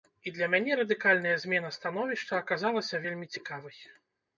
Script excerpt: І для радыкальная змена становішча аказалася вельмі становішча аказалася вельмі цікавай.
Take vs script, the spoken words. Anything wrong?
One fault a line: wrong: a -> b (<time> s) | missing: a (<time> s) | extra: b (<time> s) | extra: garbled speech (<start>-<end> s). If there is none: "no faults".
extra: мяне (0.5 s)
missing: становішча аказалася вельмі (3.3 s)